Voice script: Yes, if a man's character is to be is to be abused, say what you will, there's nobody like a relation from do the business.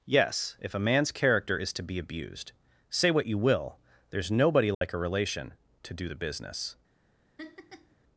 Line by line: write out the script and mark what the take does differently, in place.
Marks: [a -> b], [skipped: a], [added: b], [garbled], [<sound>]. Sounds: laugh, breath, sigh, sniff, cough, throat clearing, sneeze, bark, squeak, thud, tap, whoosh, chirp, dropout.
Yes, if a man's character is to be [skipped: is to be] abused, say what you will, there's nobody like [dropout] a relation [from -> to] do the business. [laugh]